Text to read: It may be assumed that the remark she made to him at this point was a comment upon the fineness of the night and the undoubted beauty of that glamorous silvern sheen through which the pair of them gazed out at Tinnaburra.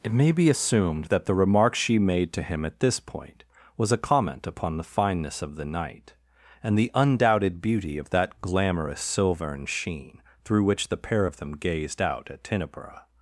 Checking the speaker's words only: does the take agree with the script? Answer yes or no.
yes